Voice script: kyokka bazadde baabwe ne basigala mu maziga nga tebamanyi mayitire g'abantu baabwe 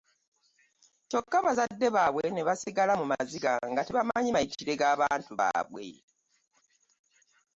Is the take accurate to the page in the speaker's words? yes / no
yes